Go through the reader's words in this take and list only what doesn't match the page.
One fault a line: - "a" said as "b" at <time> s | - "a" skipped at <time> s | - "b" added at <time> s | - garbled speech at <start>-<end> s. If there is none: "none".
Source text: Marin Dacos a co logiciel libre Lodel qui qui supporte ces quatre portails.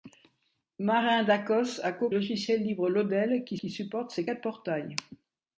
none